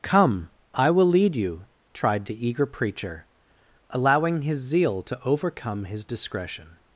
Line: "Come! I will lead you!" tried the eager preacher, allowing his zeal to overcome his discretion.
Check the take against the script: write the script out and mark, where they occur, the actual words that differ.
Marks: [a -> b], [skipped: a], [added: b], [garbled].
"Come! I will lead you!" tried the eager preacher, allowing his zeal to overcome his discretion.